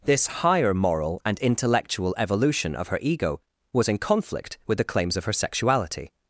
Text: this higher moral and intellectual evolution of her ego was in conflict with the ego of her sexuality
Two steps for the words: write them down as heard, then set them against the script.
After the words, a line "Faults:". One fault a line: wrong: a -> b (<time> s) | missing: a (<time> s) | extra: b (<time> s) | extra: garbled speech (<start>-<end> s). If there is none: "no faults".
this higher moral and intellectual evolution of her ego was in conflict with the claims of her sexuality
Faults:
wrong: ego -> claims (4.8 s)